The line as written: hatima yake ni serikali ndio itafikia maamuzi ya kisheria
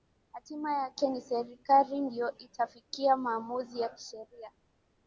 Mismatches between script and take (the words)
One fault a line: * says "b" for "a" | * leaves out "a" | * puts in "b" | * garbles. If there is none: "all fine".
all fine